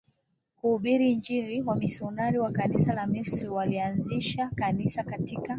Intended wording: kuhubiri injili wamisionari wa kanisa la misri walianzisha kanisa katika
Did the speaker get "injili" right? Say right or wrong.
right